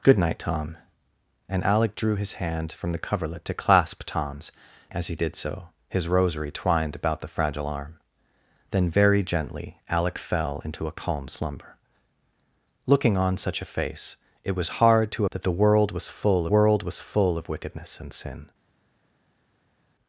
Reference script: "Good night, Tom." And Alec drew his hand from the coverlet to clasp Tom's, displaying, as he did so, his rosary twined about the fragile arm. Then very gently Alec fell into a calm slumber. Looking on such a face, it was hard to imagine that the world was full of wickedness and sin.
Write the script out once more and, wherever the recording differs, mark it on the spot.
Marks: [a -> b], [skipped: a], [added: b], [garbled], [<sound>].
"Good night, Tom." And Alec drew his hand from the coverlet to clasp Tom's, [skipped: displaying,] as he did so, his rosary twined about the fragile arm. Then very gently Alec fell into a calm slumber. Looking on such a face, it was hard to [skipped: imagine] that the world was full [added: world was full] of wickedness and sin.